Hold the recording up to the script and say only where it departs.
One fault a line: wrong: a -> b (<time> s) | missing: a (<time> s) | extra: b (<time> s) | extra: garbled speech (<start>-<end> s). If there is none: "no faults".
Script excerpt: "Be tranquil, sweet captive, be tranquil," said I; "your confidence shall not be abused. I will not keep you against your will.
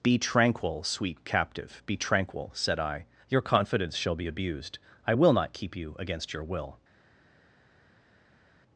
missing: not (4.2 s)